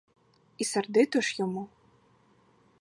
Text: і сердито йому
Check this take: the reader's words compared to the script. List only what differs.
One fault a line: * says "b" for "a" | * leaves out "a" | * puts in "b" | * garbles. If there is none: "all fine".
* puts in "ж"